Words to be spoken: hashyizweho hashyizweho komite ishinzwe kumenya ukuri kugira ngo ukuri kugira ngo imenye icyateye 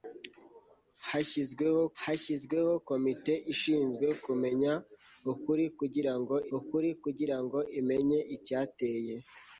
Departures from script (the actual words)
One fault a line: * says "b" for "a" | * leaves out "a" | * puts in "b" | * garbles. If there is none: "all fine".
all fine